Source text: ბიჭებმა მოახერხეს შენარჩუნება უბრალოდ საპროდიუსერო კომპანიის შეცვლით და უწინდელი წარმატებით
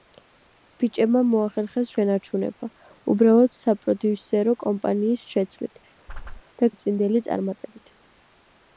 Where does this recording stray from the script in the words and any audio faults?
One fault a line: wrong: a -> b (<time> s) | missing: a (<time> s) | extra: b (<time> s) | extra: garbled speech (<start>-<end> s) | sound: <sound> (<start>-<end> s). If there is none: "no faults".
sound: whoosh (6.1-6.4 s)